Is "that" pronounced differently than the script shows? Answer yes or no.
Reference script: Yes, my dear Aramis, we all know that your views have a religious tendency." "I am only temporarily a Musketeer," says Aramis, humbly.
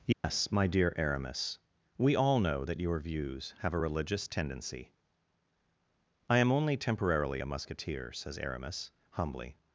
no